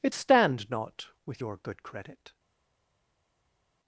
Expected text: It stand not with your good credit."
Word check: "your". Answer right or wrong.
right